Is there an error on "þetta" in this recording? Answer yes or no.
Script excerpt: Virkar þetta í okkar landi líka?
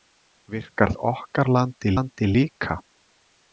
yes